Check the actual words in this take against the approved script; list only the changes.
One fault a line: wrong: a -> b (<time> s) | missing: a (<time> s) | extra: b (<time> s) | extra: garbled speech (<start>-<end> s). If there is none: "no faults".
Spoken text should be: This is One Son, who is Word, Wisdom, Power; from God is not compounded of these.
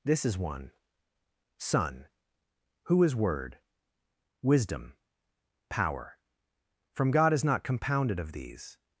no faults